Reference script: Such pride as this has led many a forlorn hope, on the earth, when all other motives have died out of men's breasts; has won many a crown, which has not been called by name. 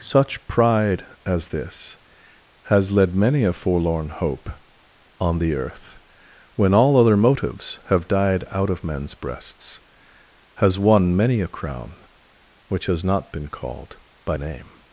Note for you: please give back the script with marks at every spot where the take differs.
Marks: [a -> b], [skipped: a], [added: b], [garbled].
Such pride as this has led many a forlorn hope, on the earth, when all other motives have died out of men's breasts; has won many a crown, which has not been called by name.